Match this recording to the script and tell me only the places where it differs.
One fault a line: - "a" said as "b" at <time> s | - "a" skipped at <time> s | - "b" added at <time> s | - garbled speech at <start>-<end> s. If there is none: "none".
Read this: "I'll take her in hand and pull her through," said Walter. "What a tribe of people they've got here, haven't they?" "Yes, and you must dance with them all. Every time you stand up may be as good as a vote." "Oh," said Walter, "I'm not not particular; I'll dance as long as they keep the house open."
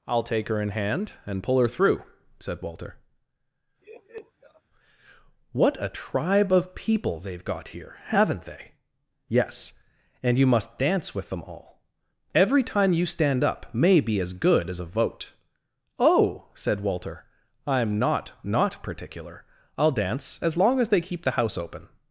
none